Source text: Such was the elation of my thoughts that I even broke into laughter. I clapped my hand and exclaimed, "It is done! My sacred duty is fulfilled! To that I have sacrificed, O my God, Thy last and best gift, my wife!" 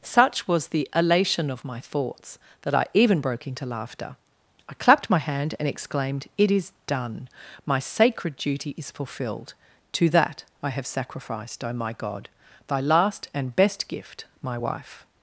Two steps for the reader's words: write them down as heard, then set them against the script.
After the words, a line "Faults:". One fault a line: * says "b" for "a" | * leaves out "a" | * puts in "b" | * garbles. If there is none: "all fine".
Such was the elation of my thoughts that I even broke into laughter. I clapped my hand and exclaimed, "It is done! My sacred duty is fulfilled! To that I have sacrificed, O my God, Thy last and best gift, my wife!"
Faults:
all fine